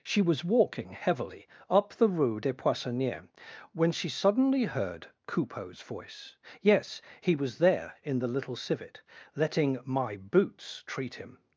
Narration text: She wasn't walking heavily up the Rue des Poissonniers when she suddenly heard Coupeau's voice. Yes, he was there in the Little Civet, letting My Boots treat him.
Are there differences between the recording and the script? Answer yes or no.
yes